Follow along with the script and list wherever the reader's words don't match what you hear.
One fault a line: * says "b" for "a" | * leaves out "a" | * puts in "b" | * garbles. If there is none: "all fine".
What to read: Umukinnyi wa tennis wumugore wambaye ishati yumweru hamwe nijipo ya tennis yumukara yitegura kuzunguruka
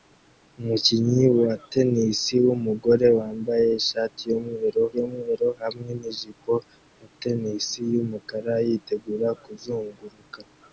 * puts in "yumweru"